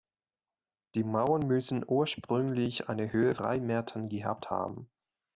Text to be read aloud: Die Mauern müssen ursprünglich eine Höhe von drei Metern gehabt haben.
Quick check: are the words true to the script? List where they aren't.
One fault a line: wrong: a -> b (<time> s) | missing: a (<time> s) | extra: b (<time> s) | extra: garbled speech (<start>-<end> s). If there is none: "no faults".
missing: von (3.4 s)